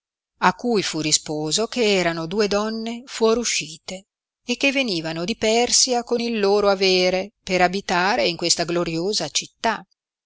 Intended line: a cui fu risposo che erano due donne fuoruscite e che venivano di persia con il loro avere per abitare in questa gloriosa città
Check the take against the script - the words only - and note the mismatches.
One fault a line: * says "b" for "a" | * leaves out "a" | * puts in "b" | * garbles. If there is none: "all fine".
all fine